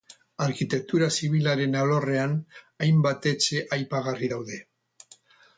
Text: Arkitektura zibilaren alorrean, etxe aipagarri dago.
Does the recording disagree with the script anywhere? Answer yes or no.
yes